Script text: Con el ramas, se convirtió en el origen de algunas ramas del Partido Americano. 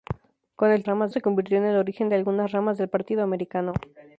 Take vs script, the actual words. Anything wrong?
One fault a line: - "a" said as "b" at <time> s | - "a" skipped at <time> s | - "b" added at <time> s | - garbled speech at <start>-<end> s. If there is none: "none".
none